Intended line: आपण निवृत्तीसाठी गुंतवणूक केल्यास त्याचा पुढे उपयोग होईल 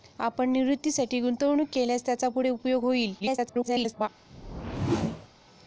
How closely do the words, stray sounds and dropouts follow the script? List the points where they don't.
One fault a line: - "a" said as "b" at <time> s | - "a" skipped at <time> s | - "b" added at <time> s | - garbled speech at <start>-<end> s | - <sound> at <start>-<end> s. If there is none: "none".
- garbled speech at 3.2-4.1 s
- whoosh at 4.3-5.3 s